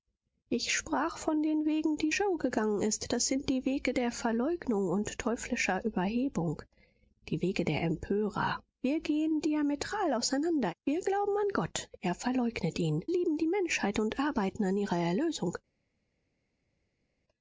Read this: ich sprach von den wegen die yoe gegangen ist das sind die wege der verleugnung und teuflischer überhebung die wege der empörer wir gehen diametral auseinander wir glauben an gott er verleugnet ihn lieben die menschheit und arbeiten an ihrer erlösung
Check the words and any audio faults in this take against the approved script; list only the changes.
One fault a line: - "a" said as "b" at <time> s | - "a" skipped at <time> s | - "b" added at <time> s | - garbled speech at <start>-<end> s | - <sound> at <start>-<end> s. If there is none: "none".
none